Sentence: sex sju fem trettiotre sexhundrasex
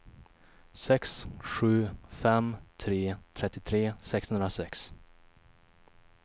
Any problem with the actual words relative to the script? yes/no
yes